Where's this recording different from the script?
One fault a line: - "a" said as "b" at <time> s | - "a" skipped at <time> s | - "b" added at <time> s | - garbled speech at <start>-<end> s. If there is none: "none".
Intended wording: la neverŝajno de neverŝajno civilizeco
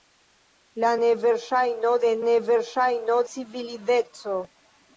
none